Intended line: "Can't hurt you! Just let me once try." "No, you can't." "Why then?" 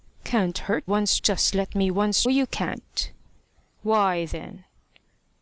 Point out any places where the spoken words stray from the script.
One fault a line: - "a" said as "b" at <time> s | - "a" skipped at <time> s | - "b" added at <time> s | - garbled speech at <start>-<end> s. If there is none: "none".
- "you" said as "once" at 0.8 s
- "try No" skipped at 2.2 s